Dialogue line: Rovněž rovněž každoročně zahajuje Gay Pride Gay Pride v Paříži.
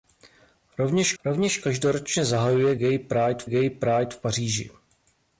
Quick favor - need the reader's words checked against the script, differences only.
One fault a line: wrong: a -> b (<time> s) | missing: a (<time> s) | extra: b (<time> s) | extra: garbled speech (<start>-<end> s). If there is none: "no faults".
no faults